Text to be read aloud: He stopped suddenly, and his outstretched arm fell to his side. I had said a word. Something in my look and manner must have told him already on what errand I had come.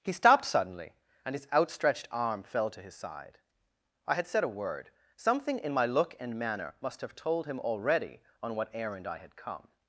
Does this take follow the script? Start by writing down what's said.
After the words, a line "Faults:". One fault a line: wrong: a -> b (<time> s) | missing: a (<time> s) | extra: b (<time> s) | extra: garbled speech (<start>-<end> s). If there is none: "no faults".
He stopped suddenly, and his outstretched arm fell to his side. I had said a word. Something in my look and manner must have told him already on what errand I had come.
Faults:
no faults